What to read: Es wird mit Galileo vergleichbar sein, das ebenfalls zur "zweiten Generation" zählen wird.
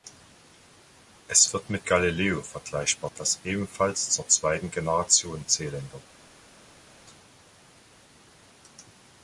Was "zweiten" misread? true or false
false